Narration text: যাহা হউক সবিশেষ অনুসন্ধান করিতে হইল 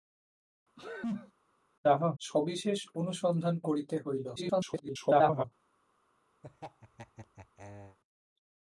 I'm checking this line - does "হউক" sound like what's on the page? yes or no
no